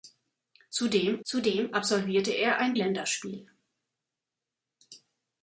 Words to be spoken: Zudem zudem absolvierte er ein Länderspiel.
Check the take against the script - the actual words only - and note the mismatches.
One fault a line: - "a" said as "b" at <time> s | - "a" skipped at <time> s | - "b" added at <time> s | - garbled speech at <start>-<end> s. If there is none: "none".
none